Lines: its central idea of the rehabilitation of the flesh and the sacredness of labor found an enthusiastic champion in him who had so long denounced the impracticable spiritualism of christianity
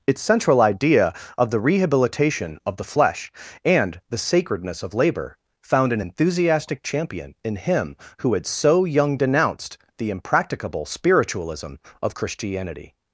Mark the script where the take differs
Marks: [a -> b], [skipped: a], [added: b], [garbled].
its central idea of the rehabilitation of the flesh and the sacredness of labor found an enthusiastic champion in him who had so [long -> young] denounced the impracticable spiritualism of christianity